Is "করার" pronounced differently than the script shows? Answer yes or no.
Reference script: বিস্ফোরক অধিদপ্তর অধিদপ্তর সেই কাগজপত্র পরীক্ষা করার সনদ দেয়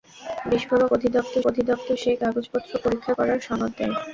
no